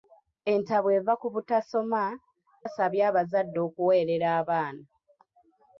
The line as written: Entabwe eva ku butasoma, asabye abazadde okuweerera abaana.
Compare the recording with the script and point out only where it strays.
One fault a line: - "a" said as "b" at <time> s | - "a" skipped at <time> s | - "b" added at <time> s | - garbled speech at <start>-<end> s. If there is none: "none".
none